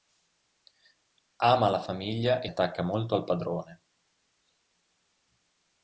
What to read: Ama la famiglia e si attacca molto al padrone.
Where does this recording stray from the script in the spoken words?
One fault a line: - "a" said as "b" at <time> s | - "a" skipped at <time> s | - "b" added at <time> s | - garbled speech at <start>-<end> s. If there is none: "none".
- "si" skipped at 2.5 s